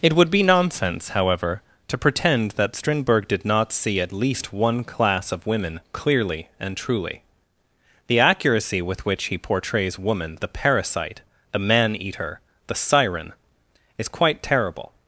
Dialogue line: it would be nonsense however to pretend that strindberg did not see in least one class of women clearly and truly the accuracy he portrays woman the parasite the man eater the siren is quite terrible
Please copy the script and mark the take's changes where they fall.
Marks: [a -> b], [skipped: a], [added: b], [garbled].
it would be nonsense however to pretend that strindberg did not see [in -> at] least one class of women clearly and truly the accuracy [added: with which] he portrays woman the parasite the man eater the siren is quite terrible